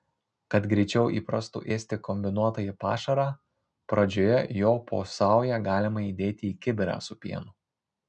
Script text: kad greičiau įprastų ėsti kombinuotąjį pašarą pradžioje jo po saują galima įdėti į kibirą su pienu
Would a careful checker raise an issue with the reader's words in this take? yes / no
no